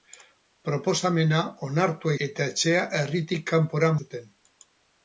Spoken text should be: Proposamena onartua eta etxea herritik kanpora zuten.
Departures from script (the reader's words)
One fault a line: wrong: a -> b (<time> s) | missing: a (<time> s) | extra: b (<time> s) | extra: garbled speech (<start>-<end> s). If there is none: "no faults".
no faults